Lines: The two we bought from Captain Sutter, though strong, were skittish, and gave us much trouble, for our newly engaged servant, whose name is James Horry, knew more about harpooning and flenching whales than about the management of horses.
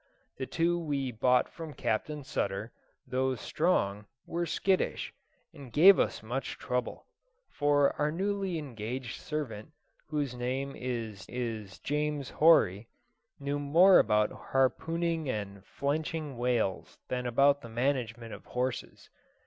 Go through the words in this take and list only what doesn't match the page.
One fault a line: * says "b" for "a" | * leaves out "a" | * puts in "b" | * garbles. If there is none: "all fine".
* puts in "is"